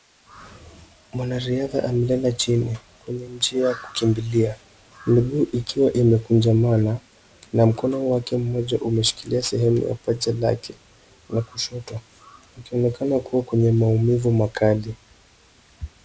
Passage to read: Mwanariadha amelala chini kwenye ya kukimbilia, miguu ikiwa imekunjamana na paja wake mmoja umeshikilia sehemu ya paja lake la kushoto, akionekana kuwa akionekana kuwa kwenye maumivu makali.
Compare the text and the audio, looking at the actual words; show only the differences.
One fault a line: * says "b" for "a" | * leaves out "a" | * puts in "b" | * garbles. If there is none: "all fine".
* puts in "njia"
* says "mkono" for "paja"
* leaves out "akionekana kuwa"